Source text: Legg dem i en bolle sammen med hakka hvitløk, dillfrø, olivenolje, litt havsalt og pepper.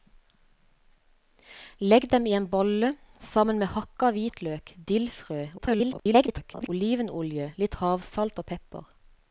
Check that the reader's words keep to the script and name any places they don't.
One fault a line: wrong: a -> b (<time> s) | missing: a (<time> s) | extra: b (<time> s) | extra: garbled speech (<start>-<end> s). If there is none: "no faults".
extra: garbled speech (5.6-6.7 s)